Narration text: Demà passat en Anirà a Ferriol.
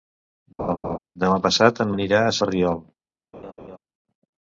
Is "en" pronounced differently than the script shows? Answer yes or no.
no